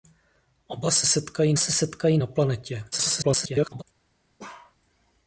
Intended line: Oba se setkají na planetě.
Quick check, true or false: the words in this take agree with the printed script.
false